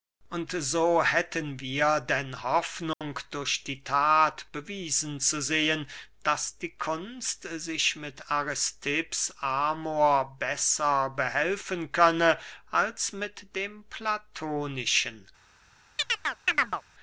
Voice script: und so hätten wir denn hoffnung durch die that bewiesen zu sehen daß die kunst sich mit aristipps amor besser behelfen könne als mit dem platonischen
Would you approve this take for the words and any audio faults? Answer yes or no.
no